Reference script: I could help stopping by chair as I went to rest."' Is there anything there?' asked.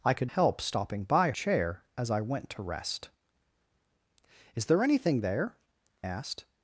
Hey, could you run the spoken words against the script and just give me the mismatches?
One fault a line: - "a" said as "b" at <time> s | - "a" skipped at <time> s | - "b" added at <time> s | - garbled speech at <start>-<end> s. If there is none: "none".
none